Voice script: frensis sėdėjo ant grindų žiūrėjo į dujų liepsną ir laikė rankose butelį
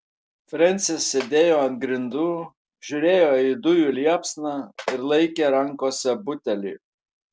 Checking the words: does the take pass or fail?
pass